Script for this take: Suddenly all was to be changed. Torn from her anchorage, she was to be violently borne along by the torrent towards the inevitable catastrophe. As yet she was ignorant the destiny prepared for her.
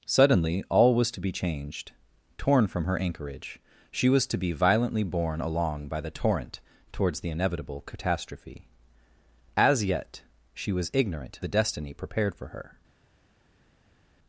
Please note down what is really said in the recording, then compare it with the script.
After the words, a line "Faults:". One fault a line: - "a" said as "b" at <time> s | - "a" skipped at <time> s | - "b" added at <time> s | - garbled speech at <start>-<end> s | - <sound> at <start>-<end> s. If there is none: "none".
Suddenly all was to be changed. Torn from her anchorage, she was to be violently borne along by the torrent towards the inevitable catastrophe. As yet she was ignorant the destiny prepared for her.
Faults:
none